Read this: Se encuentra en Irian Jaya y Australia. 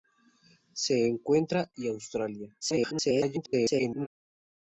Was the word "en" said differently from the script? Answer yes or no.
yes